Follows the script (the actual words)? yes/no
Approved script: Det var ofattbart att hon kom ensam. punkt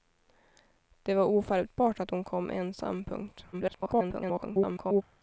no